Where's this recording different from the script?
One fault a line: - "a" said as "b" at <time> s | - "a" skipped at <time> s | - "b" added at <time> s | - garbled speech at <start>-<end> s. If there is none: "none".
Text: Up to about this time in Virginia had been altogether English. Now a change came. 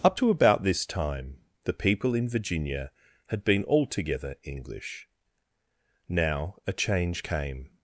- "the people" added at 1.6 s